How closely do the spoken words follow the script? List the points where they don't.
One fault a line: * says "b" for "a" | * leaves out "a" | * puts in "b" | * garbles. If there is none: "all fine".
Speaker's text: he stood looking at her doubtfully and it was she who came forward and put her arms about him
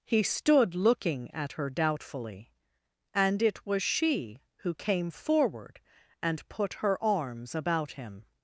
all fine